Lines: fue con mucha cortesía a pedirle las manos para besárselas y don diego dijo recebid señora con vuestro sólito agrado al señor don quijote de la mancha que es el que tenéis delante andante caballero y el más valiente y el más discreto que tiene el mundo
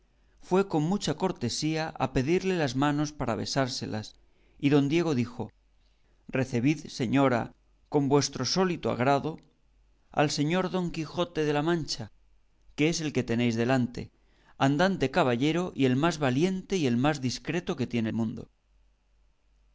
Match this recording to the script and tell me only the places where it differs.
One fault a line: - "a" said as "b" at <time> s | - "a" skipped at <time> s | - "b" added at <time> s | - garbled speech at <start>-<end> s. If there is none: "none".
- "el" skipped at 18.1 s